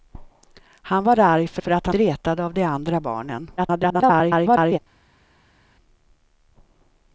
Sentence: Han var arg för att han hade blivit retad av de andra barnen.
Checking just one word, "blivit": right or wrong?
wrong